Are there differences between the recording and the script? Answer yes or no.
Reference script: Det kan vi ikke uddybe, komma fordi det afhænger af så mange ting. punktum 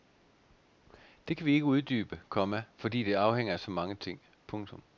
no